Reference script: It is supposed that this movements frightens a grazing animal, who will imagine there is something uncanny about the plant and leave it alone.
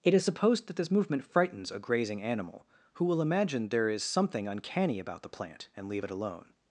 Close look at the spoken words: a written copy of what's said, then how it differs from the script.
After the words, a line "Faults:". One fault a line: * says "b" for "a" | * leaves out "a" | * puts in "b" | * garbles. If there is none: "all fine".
It is supposed that this movement frightens a grazing animal, who will imagine there is something uncanny about the plant and leave it alone.
Faults:
* says "movement" for "movements"